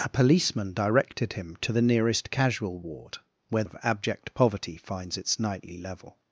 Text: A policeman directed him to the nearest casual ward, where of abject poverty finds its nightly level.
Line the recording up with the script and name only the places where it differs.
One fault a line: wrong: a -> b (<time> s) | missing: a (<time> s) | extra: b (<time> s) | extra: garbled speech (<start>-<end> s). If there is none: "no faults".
no faults